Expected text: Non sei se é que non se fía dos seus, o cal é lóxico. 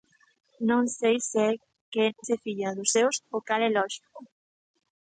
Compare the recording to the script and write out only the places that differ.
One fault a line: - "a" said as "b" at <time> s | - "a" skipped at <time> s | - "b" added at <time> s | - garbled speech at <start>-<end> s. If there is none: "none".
- "non" skipped at 2.0 s